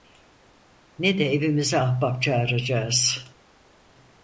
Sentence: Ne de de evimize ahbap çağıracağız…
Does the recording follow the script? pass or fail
fail